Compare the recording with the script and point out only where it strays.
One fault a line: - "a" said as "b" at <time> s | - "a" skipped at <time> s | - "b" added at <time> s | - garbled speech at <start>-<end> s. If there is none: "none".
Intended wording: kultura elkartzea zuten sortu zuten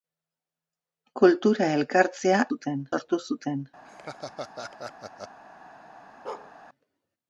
none